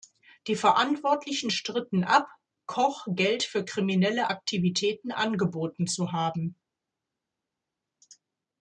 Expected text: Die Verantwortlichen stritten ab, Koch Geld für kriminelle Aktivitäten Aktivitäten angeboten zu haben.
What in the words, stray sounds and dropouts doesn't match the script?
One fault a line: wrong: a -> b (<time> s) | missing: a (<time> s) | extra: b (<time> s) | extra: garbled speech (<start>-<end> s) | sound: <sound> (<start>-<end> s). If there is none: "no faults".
missing: Aktivitäten (5.1 s)